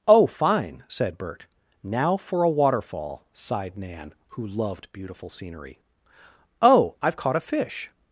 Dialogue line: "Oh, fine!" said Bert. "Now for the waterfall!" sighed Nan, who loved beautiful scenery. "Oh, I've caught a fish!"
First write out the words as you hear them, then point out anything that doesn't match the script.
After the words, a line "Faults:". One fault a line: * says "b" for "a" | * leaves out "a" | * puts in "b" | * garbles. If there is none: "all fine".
"Oh, fine!" said Bert. "Now for a waterfall!" sighed Nan, who loved beautiful scenery. "Oh, I've caught a fish!"
Faults:
* says "a" for "the"